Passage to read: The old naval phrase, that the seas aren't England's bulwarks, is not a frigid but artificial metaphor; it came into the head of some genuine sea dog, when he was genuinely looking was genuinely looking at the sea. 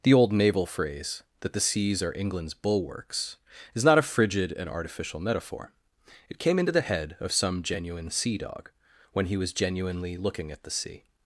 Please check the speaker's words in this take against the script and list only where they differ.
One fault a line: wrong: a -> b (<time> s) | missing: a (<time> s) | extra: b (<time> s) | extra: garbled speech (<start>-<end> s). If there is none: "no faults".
wrong: aren't -> are (2.0 s)
wrong: but -> and (4.5 s)
missing: was genuinely looking (10.5 s)